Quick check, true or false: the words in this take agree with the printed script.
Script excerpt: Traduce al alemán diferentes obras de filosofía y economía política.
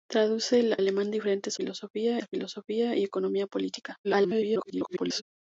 false